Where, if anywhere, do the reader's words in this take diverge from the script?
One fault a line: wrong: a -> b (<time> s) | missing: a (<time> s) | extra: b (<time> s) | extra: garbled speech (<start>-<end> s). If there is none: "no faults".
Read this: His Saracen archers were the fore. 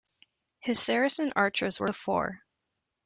no faults